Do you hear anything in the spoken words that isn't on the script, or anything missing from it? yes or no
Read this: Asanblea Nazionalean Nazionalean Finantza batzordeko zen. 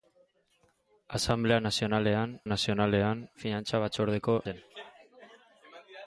no